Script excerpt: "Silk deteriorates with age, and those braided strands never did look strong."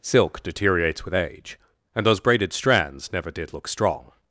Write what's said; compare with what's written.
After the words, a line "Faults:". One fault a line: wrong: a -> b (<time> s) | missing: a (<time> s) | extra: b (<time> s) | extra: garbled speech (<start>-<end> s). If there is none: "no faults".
"Silk deteriorates with age, and those braided strands never did look strong."
Faults:
no faults